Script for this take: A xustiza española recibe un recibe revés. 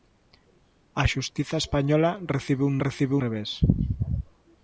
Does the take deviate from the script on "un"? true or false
false